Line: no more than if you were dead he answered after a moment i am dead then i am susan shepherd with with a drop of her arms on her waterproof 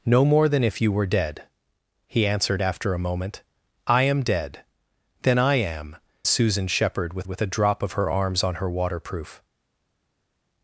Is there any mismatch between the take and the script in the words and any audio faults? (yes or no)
no